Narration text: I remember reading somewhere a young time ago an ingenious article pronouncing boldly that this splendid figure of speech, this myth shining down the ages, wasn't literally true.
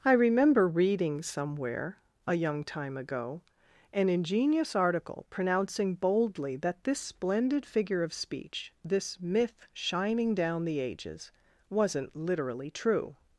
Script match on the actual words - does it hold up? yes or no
yes